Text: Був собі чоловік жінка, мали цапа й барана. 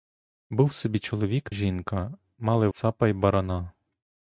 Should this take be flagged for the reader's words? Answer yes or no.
no